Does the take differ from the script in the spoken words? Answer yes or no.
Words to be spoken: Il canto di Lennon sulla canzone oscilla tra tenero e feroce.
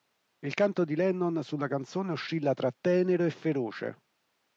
no